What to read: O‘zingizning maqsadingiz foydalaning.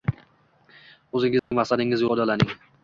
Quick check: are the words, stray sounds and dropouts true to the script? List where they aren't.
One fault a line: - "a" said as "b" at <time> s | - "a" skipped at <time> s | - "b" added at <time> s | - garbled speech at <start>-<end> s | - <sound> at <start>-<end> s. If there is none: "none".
- dropout at 1.4-1.5 s